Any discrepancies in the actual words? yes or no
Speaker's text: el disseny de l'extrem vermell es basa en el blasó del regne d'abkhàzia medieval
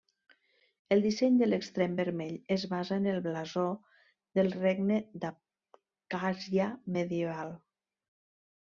no